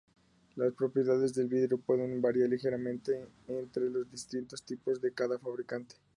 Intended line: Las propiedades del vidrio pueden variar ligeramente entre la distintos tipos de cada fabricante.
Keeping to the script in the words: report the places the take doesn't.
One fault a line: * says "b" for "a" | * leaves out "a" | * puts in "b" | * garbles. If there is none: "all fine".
* says "los" for "la"